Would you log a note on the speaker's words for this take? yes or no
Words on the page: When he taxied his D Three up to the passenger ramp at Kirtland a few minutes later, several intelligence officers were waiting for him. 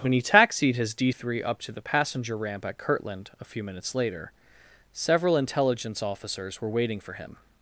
no